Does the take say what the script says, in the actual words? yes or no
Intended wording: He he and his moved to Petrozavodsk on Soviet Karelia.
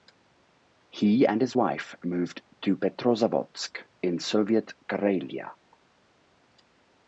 no